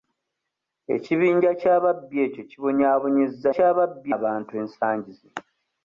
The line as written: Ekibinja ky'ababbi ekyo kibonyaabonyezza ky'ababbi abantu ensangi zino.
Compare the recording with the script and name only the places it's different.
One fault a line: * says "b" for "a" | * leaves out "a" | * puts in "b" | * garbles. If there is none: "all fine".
all fine